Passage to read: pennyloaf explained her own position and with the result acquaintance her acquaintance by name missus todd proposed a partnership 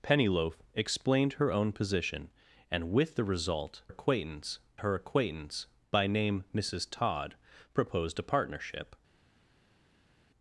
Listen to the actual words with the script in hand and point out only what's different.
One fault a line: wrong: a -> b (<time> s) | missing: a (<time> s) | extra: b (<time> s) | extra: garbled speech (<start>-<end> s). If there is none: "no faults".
no faults